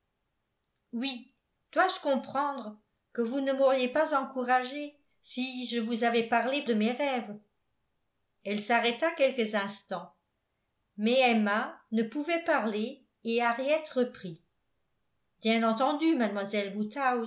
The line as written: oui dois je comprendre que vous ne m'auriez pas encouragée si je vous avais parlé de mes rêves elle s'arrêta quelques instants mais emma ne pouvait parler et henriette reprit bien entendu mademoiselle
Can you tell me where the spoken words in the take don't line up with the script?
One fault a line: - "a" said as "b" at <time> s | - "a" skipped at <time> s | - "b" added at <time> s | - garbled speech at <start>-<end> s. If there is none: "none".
none